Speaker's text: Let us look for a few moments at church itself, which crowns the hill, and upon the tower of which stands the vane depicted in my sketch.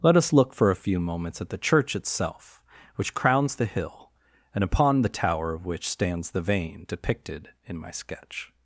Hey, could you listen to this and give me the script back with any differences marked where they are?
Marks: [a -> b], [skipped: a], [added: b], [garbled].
Let us look for a few moments at [added: the] church itself, which crowns the hill, and upon the tower of which stands the vane depicted in my sketch.